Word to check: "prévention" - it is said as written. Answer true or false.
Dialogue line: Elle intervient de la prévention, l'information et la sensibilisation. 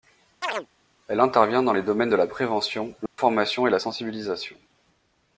true